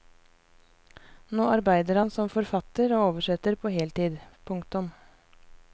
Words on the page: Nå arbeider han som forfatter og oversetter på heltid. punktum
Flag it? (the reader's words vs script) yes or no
no